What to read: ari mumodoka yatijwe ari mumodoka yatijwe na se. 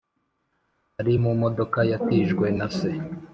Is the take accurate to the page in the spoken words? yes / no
no